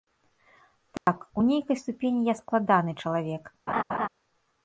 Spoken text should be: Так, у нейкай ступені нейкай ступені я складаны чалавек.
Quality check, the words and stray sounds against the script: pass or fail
fail